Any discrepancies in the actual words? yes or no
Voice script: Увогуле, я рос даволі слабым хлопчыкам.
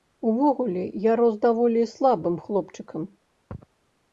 no